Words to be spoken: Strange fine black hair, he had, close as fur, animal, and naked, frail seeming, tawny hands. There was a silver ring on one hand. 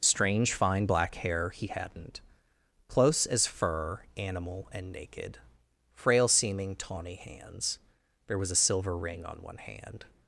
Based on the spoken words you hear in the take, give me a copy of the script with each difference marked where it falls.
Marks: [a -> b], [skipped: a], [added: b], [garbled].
Strange fine black hair, he [had, -> hadn't] close as fur, animal, and naked, frail seeming, tawny hands. There was a silver ring on one hand.